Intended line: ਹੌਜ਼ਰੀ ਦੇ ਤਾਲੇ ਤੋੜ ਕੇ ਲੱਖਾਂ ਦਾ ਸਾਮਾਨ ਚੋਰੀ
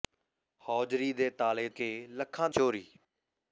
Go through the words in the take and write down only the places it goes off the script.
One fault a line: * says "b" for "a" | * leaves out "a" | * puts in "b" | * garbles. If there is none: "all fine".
* leaves out "ਤੋੜ"
* leaves out "ਦਾ ਸਾਮਾਨ"